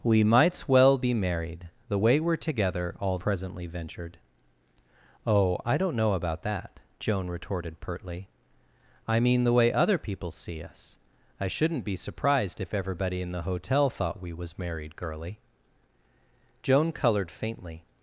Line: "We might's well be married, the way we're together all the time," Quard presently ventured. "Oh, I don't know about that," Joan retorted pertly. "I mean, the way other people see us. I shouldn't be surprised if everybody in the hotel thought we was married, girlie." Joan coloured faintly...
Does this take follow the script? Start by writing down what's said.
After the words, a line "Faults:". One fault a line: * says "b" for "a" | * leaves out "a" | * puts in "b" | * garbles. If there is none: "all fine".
"We might's well be married, the way we're together all presently ventured. "Oh, I don't know about that," Joan retorted pertly. "I mean, the way other people see us. I shouldn't be surprised if everybody in the hotel thought we was married, girlie." Joan coloured faintly...
Faults:
* leaves out "the time Quard"